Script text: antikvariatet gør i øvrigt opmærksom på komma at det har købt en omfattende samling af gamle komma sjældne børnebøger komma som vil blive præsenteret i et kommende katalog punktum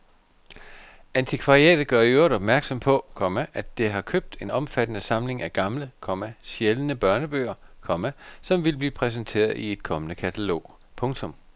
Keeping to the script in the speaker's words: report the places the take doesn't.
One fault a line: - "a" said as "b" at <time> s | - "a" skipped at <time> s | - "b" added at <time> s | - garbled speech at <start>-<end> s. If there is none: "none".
none